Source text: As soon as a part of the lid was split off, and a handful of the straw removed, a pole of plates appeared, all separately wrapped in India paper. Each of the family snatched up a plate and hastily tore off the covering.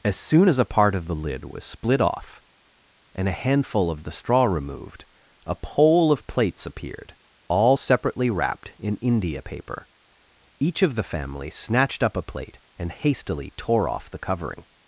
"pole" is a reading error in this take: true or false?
false